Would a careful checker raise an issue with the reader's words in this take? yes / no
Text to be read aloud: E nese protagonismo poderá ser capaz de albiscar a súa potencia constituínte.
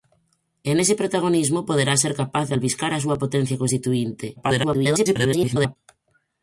yes